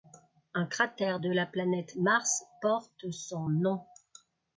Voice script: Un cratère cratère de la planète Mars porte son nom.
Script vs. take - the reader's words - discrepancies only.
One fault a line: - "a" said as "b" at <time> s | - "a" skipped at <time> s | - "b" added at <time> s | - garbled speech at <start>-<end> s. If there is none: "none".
- "cratère" skipped at 1.2 s